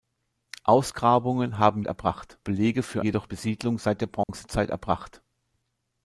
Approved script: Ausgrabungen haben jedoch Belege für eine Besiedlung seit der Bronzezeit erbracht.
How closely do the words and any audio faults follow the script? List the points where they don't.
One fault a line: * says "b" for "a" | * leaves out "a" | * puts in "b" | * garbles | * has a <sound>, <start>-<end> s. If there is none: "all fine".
* says "erbracht" for "jedoch"
* says "jedoch" for "eine"
* has a dropout, 4.2-4.3 s